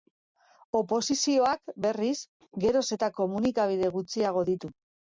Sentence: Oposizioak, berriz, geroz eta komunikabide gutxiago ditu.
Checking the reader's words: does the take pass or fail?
pass